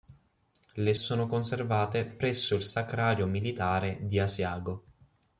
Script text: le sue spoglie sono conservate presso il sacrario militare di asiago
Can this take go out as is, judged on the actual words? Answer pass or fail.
fail